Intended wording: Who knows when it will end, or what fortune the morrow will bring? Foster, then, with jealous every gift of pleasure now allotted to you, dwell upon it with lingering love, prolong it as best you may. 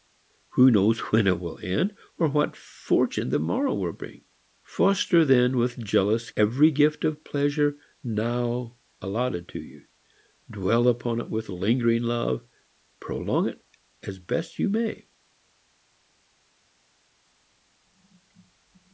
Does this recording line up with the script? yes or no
yes